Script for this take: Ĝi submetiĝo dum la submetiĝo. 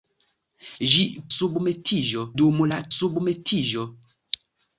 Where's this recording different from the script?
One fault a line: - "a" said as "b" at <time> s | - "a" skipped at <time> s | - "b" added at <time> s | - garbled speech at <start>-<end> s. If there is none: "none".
none